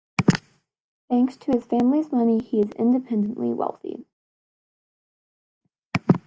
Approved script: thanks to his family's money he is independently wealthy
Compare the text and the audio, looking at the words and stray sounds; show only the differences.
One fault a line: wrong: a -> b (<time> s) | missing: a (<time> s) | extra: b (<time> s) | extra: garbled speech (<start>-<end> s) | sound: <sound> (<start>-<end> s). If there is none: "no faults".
no faults